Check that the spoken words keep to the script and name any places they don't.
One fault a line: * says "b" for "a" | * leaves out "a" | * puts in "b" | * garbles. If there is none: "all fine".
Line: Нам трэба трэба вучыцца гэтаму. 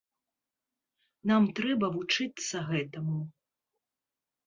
* leaves out "трэба"